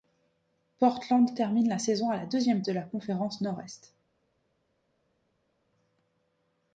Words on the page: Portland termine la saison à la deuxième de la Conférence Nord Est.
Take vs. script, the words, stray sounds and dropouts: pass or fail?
pass